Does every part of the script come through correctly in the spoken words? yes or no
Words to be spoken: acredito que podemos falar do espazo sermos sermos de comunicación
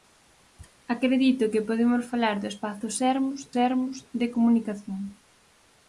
yes